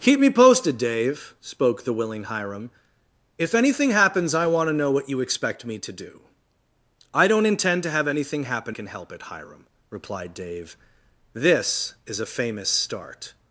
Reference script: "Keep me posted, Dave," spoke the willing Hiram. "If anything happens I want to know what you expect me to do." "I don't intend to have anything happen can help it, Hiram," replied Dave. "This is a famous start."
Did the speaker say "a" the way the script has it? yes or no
yes